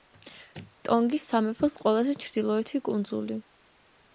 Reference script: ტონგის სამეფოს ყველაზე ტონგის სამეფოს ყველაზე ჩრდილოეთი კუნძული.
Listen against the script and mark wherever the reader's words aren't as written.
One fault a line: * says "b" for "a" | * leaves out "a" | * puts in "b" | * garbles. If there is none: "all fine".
* leaves out "ტონგის სამეფოს ყველაზე"